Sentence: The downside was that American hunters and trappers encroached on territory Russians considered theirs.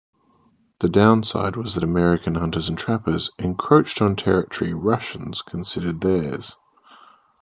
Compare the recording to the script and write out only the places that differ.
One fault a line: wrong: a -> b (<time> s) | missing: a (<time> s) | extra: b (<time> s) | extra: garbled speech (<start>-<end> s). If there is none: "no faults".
no faults